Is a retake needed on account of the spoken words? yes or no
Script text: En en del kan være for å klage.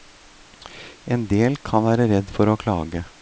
yes